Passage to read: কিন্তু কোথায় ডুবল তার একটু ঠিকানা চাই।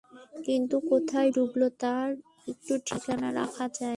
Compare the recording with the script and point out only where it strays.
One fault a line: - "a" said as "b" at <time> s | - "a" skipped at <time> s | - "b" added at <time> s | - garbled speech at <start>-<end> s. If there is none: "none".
- "রাখা" added at 3.3 s